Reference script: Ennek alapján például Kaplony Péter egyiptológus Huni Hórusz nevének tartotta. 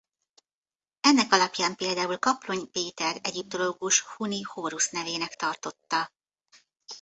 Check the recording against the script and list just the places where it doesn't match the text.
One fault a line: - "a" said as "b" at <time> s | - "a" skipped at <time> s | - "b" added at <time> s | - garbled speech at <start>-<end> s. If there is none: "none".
none